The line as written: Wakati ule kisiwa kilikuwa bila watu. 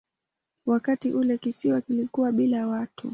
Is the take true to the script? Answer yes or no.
yes